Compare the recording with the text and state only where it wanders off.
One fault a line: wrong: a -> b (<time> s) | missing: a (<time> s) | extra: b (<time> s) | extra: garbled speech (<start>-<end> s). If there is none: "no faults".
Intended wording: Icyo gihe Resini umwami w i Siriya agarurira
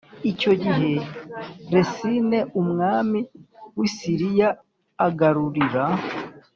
no faults